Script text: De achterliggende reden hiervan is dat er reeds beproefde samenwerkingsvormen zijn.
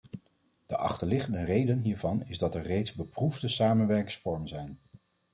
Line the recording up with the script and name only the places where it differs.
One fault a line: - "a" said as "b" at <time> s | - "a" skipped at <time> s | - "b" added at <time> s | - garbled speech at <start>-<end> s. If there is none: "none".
none